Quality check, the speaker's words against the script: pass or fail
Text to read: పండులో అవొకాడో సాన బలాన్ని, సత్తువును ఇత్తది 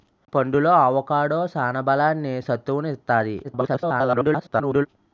fail